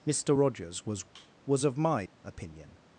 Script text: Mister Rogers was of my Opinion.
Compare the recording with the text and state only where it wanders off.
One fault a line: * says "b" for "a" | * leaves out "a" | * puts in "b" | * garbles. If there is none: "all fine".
* puts in "was"